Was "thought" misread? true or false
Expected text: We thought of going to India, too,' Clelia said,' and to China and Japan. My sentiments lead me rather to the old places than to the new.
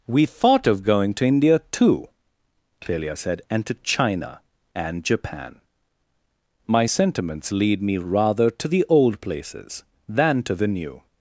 false